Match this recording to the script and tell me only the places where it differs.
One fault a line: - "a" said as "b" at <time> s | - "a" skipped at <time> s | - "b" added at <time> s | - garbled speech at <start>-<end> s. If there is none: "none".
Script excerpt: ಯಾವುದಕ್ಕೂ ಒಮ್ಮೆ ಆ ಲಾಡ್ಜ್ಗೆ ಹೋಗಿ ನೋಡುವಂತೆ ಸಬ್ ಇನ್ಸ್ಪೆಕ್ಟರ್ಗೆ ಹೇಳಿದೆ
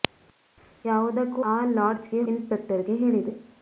- "ಒಮ್ಮೆ" skipped at 1.4 s
- "ಹೋಗಿ ನೋಡುವಂತೆ ಸಬ್" skipped at 2.2 s